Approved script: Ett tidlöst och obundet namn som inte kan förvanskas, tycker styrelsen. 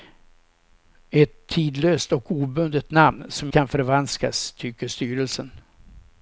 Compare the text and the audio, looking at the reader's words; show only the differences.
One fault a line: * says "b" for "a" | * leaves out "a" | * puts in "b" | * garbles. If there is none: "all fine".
* leaves out "inte"